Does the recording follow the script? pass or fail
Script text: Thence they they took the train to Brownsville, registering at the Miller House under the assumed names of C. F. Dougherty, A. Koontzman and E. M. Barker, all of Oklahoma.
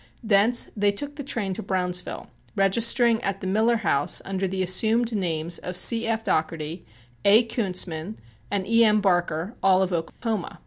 fail